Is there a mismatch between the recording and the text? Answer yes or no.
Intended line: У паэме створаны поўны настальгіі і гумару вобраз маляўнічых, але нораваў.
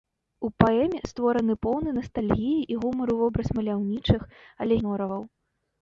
no